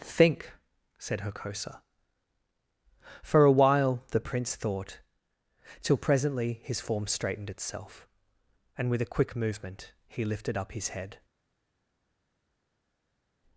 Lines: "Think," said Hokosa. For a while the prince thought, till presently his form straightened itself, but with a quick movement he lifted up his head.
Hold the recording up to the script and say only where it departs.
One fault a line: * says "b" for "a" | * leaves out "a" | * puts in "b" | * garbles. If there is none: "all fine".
* says "and" for "but"